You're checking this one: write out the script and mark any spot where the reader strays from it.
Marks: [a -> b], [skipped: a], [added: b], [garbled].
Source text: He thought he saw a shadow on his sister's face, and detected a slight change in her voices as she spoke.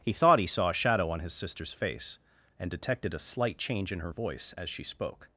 He thought he saw a shadow on his sister's face, and detected a slight change in her [voices -> voice] as she spoke.